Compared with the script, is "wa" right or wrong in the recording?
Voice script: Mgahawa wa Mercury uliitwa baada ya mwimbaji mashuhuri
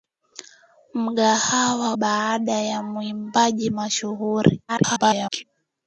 wrong